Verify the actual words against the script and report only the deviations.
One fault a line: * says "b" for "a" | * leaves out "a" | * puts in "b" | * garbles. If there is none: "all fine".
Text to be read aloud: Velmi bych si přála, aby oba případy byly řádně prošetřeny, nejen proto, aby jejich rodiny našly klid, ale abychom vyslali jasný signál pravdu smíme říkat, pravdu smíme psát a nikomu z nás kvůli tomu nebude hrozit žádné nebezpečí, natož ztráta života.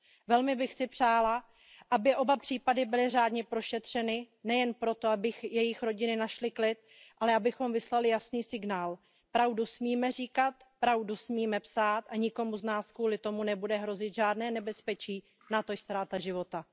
all fine